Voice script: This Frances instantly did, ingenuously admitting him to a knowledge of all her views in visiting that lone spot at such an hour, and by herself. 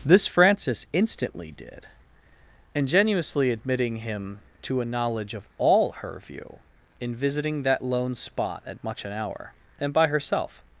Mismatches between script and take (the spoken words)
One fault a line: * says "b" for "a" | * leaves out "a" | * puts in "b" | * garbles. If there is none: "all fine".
* says "view" for "views"
* says "much" for "such"